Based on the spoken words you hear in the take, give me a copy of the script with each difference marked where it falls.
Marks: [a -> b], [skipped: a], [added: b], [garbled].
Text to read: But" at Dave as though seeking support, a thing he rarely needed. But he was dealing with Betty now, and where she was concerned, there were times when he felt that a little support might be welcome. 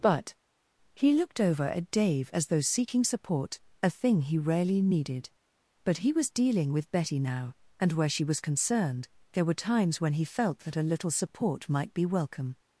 But" [added: he looked over] at Dave as though seeking support, a thing he rarely needed. But he was dealing with Betty now, and where she was concerned, there were times when he felt that a little support might be welcome.